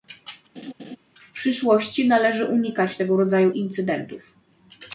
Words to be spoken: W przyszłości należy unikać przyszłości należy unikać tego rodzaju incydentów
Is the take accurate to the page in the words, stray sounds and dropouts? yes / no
no